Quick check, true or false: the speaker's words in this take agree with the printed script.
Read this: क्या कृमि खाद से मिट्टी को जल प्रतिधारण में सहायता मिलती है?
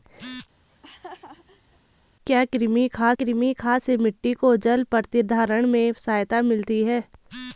false